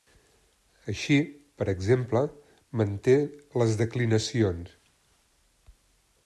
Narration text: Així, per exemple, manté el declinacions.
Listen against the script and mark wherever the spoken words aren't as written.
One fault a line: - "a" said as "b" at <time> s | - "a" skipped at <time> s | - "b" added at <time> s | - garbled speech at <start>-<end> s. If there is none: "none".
- "el" said as "les" at 3.6 s